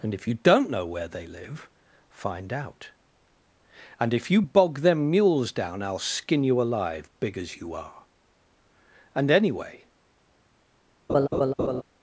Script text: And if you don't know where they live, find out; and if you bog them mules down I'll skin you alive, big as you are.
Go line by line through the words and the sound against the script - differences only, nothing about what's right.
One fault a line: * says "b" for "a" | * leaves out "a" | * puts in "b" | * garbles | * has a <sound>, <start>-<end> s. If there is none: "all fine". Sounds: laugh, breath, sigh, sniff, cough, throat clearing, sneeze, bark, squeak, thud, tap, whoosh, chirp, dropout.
* puts in "And anyway"
* has a laugh, 11.1-11.8 s